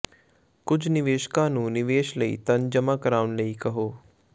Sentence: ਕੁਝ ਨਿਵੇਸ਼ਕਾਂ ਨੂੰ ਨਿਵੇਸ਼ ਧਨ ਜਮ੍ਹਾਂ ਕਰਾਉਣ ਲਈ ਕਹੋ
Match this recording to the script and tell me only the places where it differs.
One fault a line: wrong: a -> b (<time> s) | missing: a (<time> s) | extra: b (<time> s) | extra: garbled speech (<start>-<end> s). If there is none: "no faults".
extra: ਲਈ (2.2 s)